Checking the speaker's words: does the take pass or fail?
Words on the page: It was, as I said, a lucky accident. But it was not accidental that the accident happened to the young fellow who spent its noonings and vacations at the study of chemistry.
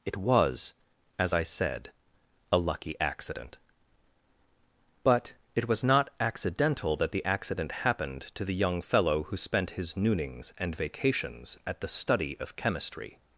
fail